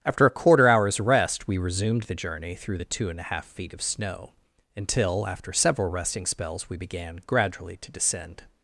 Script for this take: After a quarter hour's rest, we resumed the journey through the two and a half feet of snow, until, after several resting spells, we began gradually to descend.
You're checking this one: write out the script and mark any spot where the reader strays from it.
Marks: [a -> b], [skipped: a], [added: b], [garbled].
After a quarter hour's rest, we resumed the journey through the two and a half feet of snow, until, after several resting spells, we began gradually to descend.